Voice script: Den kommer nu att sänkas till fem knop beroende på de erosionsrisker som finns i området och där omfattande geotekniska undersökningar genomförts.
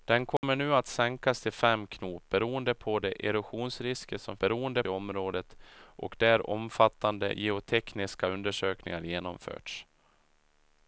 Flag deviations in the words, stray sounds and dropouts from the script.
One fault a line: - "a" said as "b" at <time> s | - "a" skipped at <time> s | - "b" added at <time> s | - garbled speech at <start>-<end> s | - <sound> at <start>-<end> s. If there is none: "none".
- dropout at 0.4-0.4 s
- "finns" said as "beroende" at 4.4 s